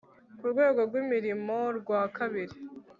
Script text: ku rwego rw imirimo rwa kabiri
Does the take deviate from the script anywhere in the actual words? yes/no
no